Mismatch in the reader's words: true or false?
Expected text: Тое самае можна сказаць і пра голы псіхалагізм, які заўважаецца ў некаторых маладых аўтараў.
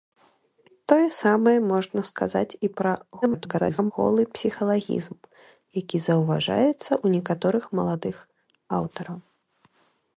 true